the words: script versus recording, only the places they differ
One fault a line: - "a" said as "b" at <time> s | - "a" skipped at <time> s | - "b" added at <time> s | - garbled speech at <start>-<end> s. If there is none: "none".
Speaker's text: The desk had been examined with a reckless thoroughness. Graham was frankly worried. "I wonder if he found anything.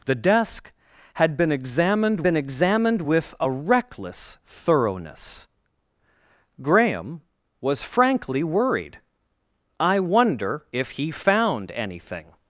- "been examined" added at 2.2 s